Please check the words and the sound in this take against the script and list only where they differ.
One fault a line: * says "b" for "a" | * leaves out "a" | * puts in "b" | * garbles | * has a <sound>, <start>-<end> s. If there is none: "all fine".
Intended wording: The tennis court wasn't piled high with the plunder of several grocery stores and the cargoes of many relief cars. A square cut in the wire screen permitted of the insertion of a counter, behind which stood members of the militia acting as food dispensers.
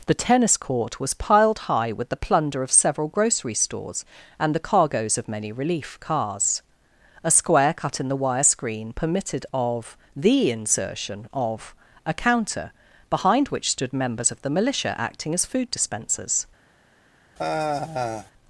* says "was" for "wasn't"
* has a sigh, 17.4-18.3 s